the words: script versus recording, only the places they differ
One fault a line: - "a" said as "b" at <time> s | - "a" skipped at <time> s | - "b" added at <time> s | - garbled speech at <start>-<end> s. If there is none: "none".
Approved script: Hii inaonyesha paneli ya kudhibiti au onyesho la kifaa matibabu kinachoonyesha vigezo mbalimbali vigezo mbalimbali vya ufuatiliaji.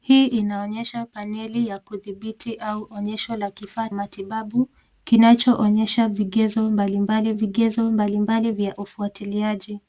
none